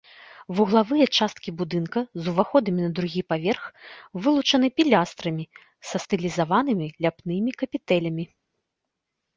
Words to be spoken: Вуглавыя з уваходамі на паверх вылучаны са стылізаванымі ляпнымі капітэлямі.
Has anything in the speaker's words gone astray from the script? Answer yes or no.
yes